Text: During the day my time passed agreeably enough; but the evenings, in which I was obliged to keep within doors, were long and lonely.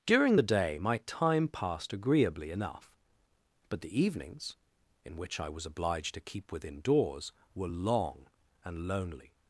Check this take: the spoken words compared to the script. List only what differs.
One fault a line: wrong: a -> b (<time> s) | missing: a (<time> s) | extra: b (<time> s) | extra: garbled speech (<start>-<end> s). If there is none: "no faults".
no faults